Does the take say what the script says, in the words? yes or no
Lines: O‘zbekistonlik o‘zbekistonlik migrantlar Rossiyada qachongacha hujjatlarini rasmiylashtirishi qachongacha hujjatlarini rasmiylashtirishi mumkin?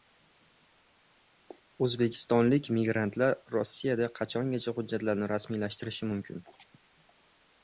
no